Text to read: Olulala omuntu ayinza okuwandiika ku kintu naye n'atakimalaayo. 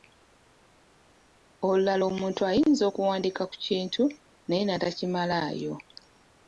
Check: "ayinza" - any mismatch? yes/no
no